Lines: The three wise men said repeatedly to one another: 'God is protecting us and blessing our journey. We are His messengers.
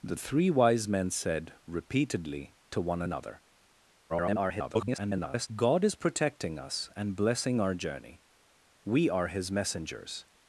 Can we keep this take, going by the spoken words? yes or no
no